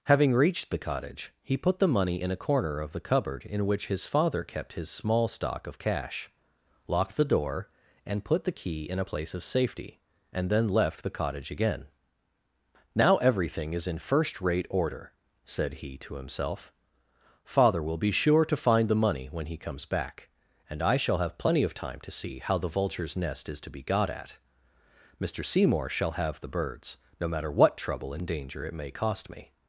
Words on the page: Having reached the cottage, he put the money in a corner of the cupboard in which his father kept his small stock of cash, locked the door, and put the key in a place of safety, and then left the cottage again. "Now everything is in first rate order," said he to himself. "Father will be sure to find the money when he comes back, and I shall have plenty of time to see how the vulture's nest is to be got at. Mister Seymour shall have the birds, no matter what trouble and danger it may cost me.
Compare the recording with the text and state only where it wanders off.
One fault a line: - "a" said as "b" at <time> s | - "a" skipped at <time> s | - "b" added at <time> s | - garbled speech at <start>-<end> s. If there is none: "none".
none